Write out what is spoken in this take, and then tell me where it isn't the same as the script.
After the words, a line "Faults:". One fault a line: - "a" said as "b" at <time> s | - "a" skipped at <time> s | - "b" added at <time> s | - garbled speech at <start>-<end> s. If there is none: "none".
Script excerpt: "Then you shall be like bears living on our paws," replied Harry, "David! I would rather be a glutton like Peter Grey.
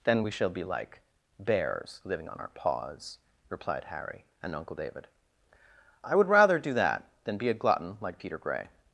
"Then we shall be like bears living on our paws," replied Harry, "and uncle David! I would rather do that, than be a glutton like Peter Grey.
Faults:
- "you" said as "we" at 0.2 s
- "and uncle" added at 4.4 s
- "do that than" added at 6.6 s